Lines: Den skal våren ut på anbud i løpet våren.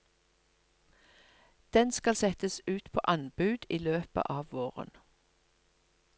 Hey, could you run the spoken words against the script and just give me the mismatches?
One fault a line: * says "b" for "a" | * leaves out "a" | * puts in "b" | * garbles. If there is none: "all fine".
* says "settes" for "våren"
* puts in "av"